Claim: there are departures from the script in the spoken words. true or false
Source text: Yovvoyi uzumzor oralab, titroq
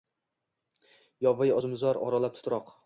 false